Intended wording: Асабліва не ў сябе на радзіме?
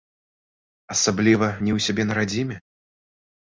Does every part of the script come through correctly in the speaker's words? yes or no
yes